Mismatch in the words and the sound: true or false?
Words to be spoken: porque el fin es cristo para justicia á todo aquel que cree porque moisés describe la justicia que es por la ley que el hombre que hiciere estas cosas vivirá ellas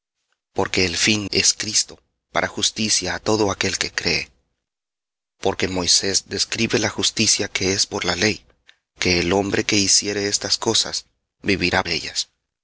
false